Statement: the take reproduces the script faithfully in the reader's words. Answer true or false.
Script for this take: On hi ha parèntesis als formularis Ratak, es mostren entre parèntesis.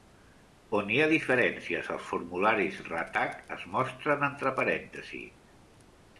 false